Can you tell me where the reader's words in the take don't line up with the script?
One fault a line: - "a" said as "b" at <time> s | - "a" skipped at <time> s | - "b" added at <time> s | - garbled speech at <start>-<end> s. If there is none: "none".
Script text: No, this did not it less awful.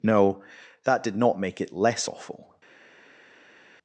- "this" said as "that" at 0.8 s
- "make" added at 1.4 s